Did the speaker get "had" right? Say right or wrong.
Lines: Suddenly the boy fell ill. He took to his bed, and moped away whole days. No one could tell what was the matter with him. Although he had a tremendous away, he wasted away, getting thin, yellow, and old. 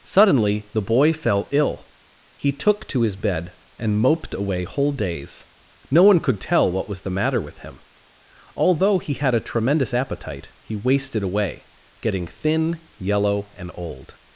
right